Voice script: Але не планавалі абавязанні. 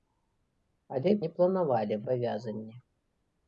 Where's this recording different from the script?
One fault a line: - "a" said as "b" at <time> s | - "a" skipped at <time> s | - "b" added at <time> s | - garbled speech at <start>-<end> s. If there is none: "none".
none